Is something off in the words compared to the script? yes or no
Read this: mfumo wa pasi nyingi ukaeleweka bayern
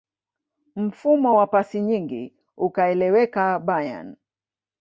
no